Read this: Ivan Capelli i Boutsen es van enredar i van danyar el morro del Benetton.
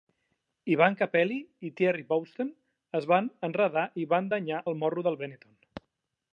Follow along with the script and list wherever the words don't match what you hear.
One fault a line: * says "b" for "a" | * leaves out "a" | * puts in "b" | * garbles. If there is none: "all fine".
* puts in "Thierry"